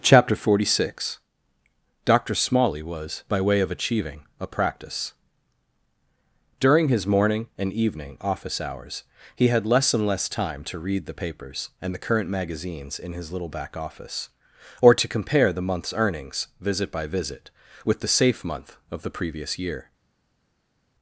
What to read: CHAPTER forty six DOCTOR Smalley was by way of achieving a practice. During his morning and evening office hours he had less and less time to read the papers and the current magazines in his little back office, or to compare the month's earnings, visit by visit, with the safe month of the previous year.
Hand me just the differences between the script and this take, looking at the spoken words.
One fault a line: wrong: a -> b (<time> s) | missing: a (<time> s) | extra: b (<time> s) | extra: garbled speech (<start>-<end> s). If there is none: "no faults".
no faults